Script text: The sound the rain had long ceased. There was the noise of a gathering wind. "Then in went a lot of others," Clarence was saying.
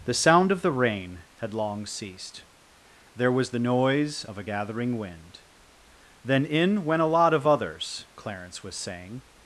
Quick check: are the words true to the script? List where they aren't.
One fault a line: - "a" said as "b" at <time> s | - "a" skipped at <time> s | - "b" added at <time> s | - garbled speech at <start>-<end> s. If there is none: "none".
- "of" added at 0.5 s